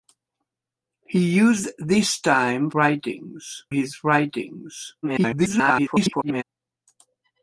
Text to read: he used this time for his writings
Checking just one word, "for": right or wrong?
wrong